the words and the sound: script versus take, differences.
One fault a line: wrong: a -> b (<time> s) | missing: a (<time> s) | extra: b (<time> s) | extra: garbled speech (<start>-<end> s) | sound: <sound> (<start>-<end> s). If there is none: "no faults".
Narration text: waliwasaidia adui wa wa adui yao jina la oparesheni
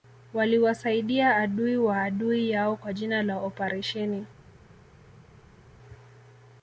missing: wa (2.0 s)
extra: kwa (2.8 s)